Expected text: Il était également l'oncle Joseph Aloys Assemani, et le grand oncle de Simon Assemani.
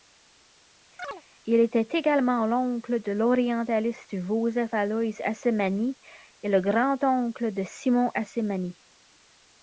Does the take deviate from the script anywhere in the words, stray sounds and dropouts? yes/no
yes